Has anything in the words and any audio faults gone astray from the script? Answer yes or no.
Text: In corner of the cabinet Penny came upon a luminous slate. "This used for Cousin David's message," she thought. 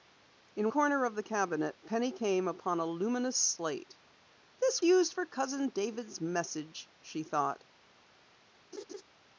yes